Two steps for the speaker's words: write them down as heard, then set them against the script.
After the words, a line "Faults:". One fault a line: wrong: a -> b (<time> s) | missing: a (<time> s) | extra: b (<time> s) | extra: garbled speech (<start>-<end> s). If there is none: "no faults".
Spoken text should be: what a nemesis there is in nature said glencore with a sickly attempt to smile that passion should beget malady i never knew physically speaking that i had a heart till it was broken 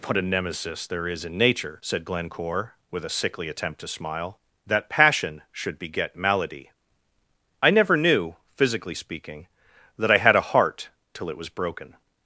what a nemesis there is in nature said glencore with a sickly attempt to smile that passion should beget malady i never knew physically speaking that i had a heart till it was broken
Faults:
no faults